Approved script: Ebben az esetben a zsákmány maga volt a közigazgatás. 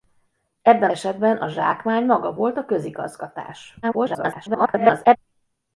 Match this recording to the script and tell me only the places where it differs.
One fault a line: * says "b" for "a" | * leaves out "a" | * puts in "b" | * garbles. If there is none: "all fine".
* leaves out "az"
* garbles